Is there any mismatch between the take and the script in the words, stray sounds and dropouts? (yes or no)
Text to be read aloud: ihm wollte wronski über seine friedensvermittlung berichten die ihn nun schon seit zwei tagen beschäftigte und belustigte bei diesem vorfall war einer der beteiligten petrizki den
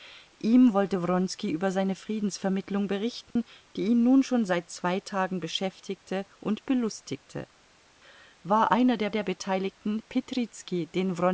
yes